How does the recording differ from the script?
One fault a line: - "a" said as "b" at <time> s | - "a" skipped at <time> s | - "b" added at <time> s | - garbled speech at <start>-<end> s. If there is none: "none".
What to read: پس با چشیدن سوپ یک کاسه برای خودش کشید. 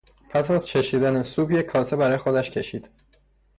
- "با" said as "از" at 0.5 s